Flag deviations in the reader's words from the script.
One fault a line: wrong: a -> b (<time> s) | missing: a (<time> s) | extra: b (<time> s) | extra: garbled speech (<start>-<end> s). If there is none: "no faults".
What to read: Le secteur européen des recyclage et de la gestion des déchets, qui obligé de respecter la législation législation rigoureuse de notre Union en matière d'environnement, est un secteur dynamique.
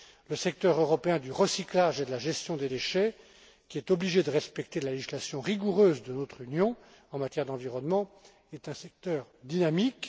wrong: des -> du (1.2 s)
extra: est (3.8 s)
missing: législation (5.4 s)